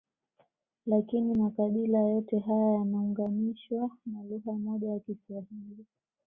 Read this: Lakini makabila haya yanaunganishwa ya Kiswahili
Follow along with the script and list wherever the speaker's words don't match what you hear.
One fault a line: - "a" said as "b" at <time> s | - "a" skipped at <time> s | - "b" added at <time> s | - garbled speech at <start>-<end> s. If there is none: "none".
- "yote" added at 2.0 s
- "na lugha moja" added at 4.1 s